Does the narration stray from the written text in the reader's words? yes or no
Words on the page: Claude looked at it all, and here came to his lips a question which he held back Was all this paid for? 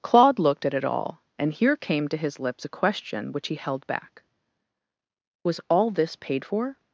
no